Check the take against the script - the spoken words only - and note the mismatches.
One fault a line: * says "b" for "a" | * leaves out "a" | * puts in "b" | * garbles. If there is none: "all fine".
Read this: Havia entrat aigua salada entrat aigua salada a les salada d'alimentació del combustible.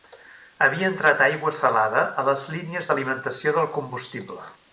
* leaves out "entrat aigua salada"
* says "línies" for "salada"